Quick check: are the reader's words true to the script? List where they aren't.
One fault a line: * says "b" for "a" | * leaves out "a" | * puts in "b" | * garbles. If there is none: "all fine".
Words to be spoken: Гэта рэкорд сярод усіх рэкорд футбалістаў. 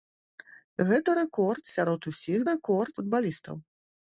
all fine